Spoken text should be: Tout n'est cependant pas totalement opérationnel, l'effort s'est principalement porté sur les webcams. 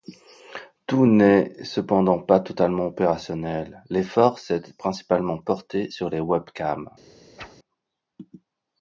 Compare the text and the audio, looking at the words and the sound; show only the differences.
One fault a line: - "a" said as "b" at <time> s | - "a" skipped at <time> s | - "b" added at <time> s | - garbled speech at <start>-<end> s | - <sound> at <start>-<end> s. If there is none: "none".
- whoosh at 7.4-7.6 s